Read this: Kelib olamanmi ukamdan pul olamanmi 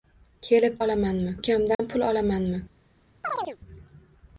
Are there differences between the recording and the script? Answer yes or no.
no